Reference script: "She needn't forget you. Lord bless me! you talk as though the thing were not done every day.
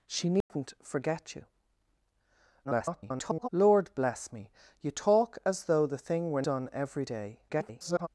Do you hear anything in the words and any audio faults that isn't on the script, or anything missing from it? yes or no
yes